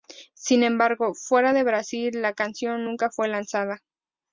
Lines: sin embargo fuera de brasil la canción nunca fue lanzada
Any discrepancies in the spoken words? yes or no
no